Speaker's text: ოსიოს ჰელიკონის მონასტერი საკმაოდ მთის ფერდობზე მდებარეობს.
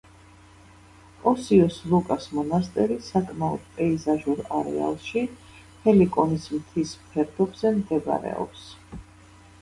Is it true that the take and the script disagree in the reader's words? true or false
true